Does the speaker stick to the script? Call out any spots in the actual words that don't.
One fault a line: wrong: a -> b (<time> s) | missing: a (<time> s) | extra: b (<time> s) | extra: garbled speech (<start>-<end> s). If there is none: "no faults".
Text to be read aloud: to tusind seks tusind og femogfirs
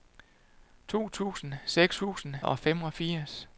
no faults